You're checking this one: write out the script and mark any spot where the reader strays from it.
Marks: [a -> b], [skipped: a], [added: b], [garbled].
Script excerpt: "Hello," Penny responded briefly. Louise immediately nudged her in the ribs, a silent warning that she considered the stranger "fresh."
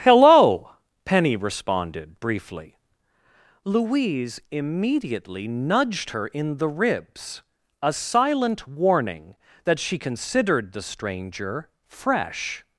"Hello," Penny responded briefly. Louise immediately nudged her in the ribs, a silent warning that she considered the stranger "fresh."